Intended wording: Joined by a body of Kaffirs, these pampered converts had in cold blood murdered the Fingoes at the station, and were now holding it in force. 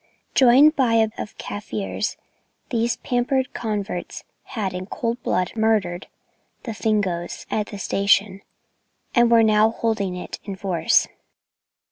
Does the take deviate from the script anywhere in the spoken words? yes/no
yes